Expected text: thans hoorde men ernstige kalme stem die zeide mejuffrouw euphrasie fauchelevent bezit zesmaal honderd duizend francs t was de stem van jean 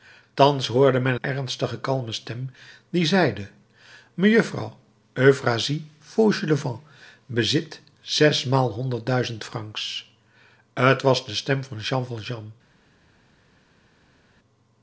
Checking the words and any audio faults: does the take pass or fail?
pass